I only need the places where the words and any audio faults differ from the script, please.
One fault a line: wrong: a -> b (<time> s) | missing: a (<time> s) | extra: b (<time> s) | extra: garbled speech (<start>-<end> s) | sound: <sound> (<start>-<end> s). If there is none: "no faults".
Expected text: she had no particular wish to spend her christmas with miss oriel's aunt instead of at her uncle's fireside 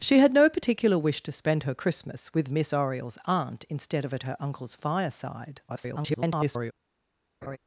extra: garbled speech (5.7-6.7 s)
sound: laugh (7.4-7.6 s)